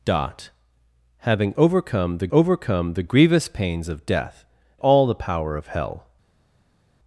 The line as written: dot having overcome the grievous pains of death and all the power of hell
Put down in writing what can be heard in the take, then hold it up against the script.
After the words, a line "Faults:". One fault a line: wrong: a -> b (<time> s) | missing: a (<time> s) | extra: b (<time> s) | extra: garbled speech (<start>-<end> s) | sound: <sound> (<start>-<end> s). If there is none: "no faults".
dot having overcome the overcome the grievous pains of death all the power of hell
Faults:
extra: overcome the (2.3 s)
missing: and (4.4 s)